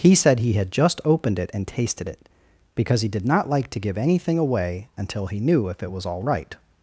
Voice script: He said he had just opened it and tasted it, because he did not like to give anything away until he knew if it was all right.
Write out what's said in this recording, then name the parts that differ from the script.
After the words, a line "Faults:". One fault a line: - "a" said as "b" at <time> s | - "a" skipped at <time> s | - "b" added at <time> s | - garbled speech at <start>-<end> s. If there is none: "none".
He said he had just opened it and tasted it, because he did not like to give anything away until he knew if it was all right.
Faults:
none